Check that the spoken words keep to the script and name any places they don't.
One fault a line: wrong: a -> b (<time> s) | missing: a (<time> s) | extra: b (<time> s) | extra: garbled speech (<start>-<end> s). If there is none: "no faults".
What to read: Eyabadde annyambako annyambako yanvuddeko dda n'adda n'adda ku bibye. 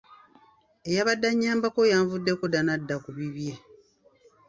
missing: annyambako (1.8 s)
missing: n'adda (3.0 s)